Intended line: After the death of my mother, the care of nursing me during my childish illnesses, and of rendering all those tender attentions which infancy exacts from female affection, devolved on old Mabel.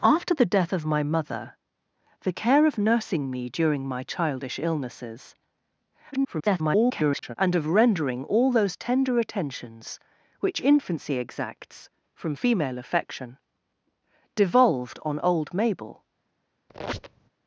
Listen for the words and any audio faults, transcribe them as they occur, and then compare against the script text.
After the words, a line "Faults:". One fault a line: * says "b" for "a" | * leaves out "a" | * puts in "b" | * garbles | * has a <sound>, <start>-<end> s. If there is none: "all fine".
After the death of my mother, the care of nursing me during my childish illnesses, [garbled] and of rendering all those tender attentions which infancy exacts from female affection, devolved on old Mabel.
Faults:
* garbles
* has a squeak, 16.7-17.3 s